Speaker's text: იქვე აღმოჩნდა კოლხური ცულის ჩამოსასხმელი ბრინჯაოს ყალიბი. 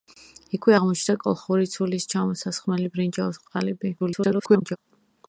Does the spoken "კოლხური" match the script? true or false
true